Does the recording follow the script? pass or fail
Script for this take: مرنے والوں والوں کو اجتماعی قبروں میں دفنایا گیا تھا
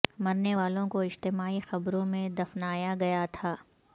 fail